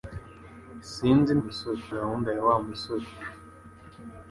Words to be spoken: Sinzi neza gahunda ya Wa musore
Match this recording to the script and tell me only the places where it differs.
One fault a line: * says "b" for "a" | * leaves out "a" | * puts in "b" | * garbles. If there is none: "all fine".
* says "musore" for "neza"